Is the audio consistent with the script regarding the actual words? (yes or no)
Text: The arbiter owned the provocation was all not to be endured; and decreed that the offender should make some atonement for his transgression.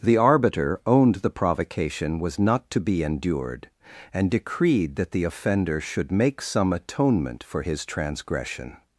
no